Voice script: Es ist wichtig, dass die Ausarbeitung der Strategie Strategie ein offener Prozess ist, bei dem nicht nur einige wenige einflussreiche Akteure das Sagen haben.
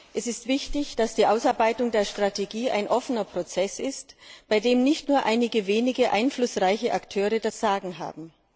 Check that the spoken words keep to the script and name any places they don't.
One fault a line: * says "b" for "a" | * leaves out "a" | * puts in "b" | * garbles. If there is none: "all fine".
* leaves out "Strategie"